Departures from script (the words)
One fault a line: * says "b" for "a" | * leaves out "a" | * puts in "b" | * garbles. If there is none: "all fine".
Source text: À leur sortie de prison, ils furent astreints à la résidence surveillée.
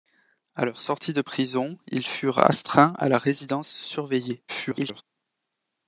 * garbles